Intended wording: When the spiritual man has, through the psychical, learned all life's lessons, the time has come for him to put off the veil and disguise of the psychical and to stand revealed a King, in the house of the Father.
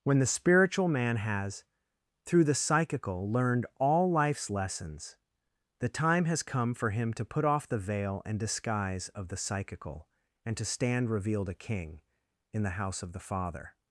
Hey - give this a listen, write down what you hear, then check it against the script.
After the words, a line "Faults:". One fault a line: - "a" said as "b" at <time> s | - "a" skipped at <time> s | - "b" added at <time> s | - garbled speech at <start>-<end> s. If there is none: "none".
When the spiritual man has, through the psychical, learned all life's lessons, the time has come for him to put off the veil and disguise of the psychical and to stand revealed a King, in the house of the Father.
Faults:
none